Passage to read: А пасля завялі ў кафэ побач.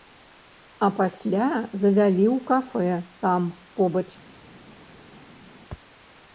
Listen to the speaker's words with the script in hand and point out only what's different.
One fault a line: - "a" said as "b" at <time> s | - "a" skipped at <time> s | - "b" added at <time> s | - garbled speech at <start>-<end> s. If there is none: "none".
- "там" added at 3.3 s